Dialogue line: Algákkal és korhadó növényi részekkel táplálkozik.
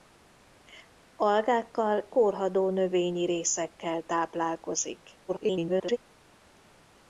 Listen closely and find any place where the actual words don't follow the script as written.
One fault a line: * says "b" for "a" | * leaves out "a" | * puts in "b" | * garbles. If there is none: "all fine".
* leaves out "és"
* garbles